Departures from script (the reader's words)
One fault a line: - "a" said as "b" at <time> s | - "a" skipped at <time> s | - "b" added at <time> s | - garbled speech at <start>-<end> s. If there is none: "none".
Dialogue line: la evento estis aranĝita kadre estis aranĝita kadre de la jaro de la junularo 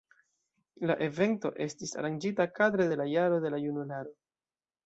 - "estis aranĝita kadre" skipped at 2.9 s